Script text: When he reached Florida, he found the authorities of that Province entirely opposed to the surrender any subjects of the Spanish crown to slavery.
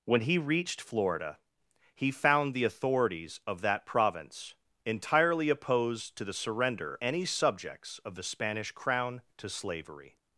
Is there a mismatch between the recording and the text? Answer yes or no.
no